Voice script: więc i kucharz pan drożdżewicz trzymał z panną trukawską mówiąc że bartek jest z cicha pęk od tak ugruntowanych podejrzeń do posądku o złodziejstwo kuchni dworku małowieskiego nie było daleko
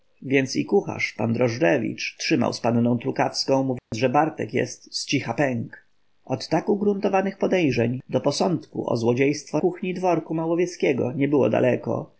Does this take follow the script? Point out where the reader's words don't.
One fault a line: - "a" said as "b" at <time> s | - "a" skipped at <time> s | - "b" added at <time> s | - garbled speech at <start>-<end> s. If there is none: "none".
none